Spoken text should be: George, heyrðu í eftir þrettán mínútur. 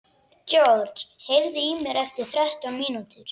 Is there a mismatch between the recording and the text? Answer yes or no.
yes